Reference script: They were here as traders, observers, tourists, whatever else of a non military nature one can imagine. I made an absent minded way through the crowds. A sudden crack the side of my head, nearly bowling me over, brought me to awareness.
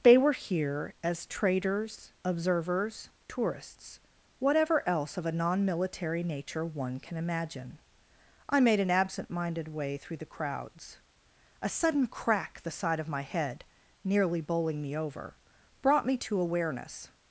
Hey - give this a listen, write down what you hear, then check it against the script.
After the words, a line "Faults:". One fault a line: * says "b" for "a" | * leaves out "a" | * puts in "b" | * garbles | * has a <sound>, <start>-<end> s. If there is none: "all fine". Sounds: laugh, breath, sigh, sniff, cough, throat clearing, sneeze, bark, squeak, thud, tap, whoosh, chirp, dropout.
They were here as traders, observers, tourists, whatever else of a non military nature one can imagine. I made an absent minded way through the crowds. A sudden crack the side of my head, nearly bowling me over, brought me to awareness.
Faults:
all fine